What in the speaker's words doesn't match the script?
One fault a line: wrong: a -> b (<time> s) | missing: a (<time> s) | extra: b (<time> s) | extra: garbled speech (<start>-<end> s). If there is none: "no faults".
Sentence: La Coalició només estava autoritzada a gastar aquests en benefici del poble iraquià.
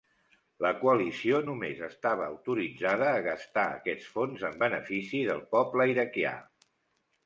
extra: fons (4.2 s)